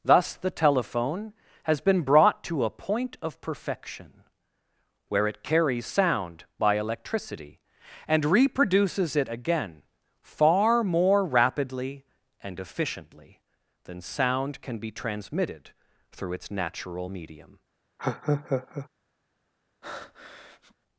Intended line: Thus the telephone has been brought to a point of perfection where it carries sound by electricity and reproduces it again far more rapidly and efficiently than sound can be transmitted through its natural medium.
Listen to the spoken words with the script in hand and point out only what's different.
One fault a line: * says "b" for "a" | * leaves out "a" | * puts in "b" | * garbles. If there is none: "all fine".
all fine